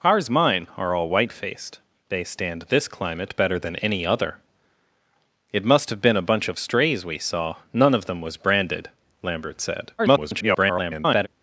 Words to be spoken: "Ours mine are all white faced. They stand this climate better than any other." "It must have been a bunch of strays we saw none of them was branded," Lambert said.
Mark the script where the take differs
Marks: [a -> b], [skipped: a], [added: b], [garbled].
"Ours mine are all white faced. They stand this climate better than any other." "It must have been a bunch of strays we saw none of them was branded," Lambert said. [garbled]